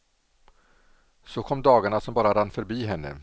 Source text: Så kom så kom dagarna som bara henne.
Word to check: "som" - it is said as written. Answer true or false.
true